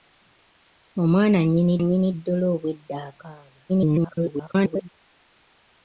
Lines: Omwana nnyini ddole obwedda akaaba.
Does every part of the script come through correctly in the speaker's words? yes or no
no